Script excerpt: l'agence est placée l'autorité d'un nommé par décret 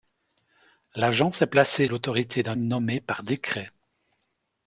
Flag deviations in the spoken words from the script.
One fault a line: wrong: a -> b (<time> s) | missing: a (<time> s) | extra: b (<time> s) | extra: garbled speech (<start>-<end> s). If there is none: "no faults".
no faults